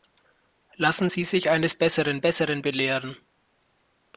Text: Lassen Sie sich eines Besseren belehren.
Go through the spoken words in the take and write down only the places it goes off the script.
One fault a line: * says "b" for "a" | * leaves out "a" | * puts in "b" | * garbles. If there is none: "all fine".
* puts in "Besseren"